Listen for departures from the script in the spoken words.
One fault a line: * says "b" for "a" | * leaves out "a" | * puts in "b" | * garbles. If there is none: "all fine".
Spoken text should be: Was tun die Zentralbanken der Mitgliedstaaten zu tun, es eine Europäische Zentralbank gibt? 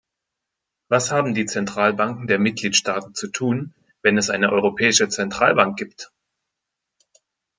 * says "haben" for "tun"
* puts in "wenn"